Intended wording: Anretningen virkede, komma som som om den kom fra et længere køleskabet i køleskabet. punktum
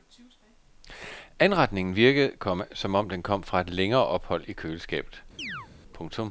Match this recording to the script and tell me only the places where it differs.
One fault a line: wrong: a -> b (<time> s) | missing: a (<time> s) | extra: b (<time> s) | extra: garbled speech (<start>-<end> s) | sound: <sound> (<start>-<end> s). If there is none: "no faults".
missing: som (3.0 s)
wrong: køleskabet -> ophold (4.0 s)
sound: chirp (5.4-5.7 s)